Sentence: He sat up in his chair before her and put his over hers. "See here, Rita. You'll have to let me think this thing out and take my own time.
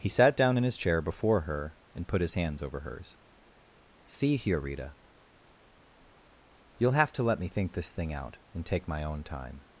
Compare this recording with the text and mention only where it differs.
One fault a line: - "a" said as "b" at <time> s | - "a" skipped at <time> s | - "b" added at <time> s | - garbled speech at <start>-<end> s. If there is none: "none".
- "up" said as "down" at 0.3 s
- "hands" added at 2.3 s